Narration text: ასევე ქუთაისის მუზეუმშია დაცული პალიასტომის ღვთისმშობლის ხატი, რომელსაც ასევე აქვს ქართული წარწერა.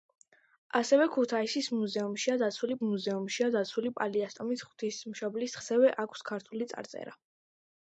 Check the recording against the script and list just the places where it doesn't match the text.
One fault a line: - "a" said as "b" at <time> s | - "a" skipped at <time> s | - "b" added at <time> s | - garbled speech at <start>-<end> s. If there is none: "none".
- "მუზეუმშია დაცული" added at 2.8 s
- "ხატი რომელსაც" skipped at 5.6 s